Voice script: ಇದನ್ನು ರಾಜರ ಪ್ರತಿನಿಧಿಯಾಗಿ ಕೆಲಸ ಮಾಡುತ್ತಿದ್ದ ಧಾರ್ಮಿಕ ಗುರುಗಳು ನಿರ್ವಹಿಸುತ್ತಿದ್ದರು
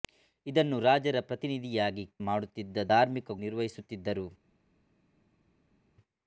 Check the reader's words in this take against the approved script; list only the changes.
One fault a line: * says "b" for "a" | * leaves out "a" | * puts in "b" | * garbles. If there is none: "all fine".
* leaves out "ಕೆಲಸ"
* leaves out "ಗುರುಗಳು"